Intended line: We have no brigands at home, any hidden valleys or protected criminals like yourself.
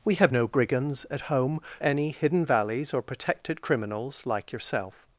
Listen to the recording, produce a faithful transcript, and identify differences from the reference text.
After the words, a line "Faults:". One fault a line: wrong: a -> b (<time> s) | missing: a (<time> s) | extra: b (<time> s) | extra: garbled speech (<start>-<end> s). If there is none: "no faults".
We have no brigands at home, any hidden valleys or protected criminals like yourself.
Faults:
no faults